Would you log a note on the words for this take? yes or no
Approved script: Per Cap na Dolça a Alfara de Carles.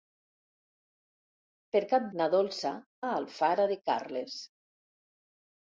no